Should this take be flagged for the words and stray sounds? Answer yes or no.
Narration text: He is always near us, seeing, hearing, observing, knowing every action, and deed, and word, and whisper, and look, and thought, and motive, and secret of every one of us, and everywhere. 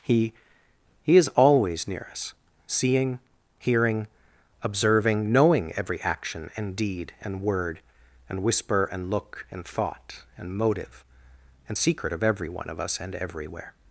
yes